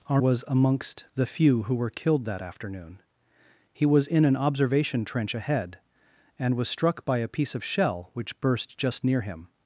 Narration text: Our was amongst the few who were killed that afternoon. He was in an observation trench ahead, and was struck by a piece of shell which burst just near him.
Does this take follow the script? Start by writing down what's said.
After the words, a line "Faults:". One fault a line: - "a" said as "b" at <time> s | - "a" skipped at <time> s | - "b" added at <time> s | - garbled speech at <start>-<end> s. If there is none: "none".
Our was amongst the few who were killed that afternoon. He was in an observation trench ahead, and was struck by a piece of shell which burst just near him.
Faults:
none